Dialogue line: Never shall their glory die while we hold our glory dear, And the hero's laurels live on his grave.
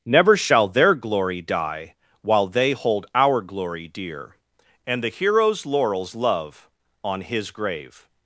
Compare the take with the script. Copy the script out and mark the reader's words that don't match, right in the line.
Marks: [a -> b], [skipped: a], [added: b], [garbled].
Never shall their glory die while [we -> they] hold our glory dear, And the hero's laurels [live -> love] on his grave.